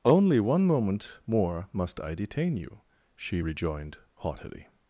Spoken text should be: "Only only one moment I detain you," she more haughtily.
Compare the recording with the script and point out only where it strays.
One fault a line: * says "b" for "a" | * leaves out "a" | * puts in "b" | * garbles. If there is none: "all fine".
* leaves out "only"
* puts in "more must"
* says "rejoined" for "more"